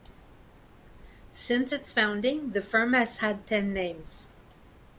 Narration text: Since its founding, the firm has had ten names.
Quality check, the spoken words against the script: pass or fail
pass